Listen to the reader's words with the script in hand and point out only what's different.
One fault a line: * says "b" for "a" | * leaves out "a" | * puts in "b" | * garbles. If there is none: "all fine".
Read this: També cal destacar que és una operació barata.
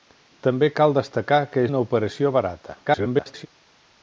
* leaves out "és"
* garbles